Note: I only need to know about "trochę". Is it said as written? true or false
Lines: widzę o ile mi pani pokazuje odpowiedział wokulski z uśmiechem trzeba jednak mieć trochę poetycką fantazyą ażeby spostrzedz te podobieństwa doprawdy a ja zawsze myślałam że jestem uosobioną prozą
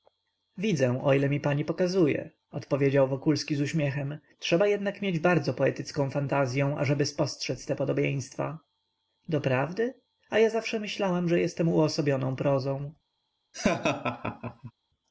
false